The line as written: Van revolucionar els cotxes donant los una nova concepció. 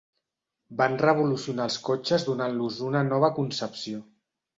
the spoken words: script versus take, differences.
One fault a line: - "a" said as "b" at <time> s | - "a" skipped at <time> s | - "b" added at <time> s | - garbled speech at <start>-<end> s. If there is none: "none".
none